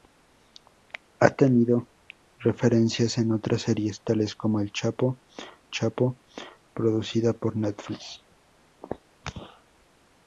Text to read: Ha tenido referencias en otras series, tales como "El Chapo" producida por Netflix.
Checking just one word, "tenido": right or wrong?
right